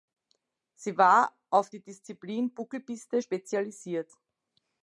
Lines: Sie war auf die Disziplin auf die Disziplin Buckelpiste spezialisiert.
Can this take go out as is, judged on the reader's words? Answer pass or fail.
fail